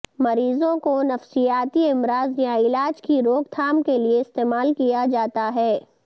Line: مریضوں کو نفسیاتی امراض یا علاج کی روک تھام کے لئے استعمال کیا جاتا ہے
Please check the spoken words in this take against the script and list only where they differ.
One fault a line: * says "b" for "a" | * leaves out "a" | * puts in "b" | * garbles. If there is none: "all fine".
all fine